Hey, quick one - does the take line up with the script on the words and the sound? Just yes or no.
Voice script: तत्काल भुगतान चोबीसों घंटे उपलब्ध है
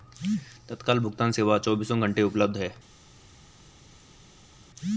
no